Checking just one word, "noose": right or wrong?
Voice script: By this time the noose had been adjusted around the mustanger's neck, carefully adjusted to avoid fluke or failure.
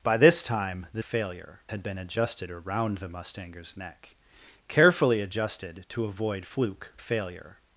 wrong